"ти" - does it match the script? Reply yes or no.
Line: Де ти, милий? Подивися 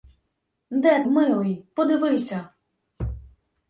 no